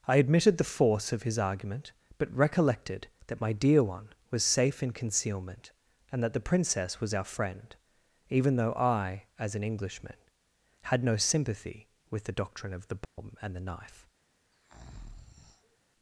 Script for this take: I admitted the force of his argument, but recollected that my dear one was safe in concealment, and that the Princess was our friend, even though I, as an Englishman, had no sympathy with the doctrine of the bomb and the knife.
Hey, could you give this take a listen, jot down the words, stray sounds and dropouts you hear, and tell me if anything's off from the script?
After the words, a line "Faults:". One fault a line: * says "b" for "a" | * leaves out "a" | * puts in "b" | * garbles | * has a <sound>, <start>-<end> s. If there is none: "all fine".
I admitted the force of his argument, but recollected that my dear one was safe in concealment, and that the Princess was our friend, even though I, as an Englishman, had no sympathy with the doctrine of the bomb and the knife.
Faults:
* has a dropout, 13.0-13.2 s
* has a breath, 14.5-15.8 s